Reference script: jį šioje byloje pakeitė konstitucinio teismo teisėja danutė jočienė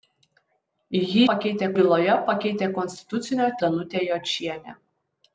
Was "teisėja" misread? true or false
true